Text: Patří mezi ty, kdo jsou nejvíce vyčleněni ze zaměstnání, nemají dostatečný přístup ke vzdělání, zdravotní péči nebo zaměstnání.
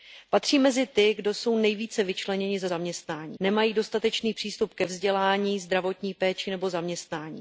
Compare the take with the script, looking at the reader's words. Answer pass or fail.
pass